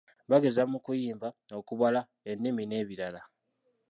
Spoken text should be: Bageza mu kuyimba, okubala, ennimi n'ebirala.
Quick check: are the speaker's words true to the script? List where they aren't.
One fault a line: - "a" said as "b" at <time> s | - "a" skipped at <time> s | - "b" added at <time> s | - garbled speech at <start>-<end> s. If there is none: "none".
none